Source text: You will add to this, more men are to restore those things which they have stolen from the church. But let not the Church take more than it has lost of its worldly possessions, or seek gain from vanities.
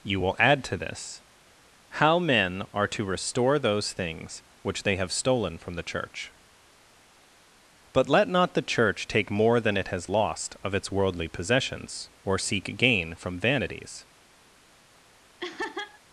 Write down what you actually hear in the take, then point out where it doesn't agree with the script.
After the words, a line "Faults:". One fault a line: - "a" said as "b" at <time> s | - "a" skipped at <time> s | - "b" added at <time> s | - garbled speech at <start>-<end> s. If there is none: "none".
You will add to this, how men are to restore those things which they have stolen from the church. But let not the Church take more than it has lost of its worldly possessions, or seek gain from vanities.
Faults:
- "more" said as "how" at 1.9 s